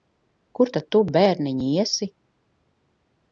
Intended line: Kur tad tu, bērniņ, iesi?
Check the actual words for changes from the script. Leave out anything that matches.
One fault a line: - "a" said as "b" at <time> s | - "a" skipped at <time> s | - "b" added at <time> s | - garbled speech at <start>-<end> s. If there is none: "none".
none